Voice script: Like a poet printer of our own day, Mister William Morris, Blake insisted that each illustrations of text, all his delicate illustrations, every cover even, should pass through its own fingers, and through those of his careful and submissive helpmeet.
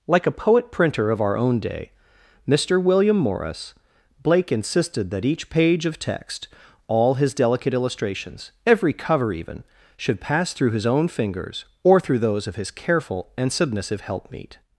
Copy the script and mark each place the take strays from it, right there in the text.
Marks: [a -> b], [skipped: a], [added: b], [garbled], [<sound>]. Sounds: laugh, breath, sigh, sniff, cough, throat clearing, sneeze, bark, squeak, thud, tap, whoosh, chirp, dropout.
Like a poet printer of our own day, Mister William Morris, Blake insisted that each [illustrations -> page] of text, all his delicate illustrations, every cover even, should pass through [its -> his] own fingers, [and -> or] through those of his careful and submissive helpmeet.